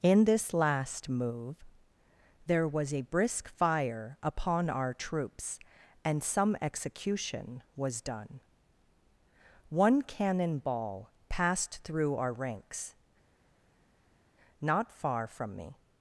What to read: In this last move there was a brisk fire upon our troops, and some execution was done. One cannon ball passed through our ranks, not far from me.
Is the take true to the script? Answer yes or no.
yes